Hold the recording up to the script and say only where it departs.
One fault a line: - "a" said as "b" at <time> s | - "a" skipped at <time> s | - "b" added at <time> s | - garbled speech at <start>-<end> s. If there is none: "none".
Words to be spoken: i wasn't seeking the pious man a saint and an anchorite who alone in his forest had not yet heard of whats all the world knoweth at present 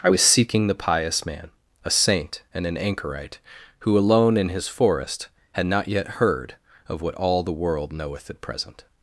- "wasn't" said as "was" at 0.1 s
- "whats" said as "what" at 7.0 s